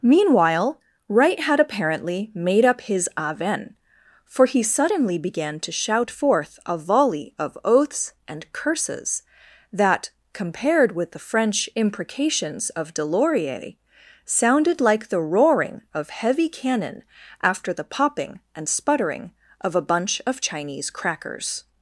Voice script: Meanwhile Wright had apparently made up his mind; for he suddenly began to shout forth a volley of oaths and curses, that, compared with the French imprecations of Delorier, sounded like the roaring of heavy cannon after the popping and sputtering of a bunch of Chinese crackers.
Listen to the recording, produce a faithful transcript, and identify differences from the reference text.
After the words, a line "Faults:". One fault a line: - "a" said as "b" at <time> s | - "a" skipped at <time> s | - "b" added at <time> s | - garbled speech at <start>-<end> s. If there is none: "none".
Meanwhile Wright had apparently made up his aven; for he suddenly began to shout forth a volley of oaths and curses, that, compared with the French imprecations of Delorier, sounded like the roaring of heavy cannon after the popping and sputtering of a bunch of Chinese crackers.
Faults:
- "mind" said as "aven" at 3.1 s